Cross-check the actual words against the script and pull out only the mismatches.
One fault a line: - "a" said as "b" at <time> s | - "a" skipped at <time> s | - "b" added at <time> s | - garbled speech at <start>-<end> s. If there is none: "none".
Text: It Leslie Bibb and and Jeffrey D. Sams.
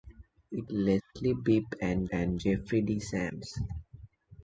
none